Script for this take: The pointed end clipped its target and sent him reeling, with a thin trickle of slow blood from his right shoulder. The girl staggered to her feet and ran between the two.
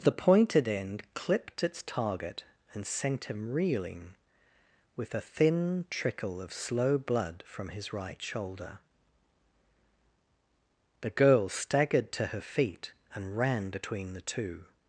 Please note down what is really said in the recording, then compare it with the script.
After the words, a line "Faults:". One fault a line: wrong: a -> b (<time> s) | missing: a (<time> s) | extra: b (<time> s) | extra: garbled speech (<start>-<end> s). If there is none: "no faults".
The pointed end clipped its target and sent him reeling, with a thin trickle of slow blood from his right shoulder. The girl staggered to her feet and ran between the two.
Faults:
no faults